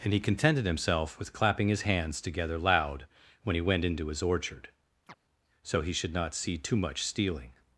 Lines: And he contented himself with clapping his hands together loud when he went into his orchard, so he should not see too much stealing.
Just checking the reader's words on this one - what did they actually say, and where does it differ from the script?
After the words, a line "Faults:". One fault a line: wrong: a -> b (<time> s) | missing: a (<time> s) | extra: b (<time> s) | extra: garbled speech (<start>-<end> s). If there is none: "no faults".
And he contented himself with clapping his hands together loud when he went into his orchard, so he should not see too much stealing.
Faults:
no faults